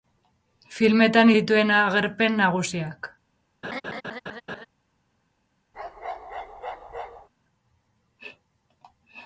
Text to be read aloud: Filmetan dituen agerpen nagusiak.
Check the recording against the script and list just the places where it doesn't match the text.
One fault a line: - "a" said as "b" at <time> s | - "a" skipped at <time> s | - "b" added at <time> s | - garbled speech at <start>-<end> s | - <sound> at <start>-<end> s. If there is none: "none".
- laugh at 3.6-4.7 s
- bark at 5.7-7.3 s